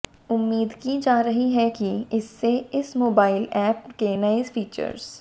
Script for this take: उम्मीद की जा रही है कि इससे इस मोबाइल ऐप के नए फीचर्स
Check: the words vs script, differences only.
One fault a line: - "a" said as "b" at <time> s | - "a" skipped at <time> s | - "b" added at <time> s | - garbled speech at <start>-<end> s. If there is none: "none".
none